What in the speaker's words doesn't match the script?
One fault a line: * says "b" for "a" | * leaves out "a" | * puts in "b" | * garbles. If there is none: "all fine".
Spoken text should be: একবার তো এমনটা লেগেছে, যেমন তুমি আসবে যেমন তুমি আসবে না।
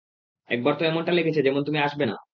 * leaves out "যেমন তুমি আসবে"